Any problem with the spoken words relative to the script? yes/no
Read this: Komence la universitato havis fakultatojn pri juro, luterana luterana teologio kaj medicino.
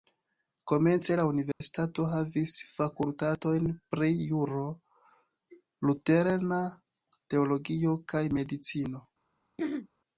yes